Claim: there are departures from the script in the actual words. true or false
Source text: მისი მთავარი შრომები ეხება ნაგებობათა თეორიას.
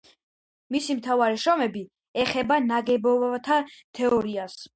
false